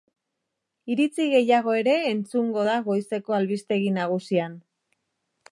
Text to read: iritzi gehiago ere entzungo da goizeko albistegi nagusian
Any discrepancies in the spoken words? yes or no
no